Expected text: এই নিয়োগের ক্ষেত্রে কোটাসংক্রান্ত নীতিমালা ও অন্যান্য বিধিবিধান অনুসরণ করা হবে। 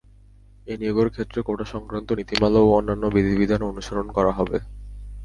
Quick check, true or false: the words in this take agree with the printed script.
true